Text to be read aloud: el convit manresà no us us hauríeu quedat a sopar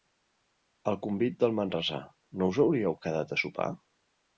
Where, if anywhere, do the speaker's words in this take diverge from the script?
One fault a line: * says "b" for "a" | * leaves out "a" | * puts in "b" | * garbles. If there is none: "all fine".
* puts in "del"
* leaves out "us"